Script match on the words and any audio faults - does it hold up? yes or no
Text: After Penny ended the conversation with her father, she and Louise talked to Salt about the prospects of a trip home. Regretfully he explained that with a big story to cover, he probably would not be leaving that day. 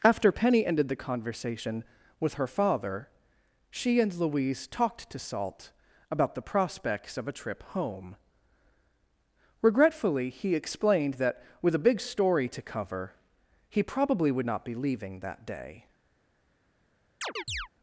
no